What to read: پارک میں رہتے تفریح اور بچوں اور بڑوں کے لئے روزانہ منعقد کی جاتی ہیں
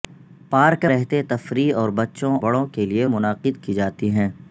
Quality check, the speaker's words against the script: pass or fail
fail